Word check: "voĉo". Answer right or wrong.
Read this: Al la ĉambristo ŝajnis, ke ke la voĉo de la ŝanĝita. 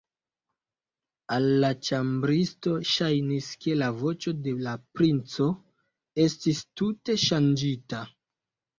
right